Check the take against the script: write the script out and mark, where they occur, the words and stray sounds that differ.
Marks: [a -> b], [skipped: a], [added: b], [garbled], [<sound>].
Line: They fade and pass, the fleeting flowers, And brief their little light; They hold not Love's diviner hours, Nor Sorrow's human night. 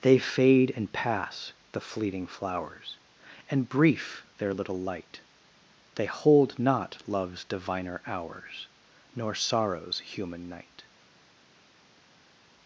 They fade and pass, the fleeting flowers, And brief their little light; They hold not Love's diviner hours, Nor Sorrow's human night.